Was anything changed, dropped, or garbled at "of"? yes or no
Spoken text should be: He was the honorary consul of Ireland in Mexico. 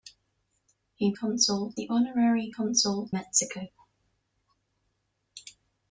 yes